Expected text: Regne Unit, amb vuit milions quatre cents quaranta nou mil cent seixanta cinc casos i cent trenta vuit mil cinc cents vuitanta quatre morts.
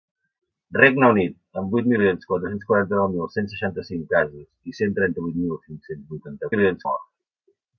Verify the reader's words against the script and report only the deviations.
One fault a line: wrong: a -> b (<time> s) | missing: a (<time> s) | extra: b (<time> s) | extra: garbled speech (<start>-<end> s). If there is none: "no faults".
wrong: quatre -> milions (6.5 s)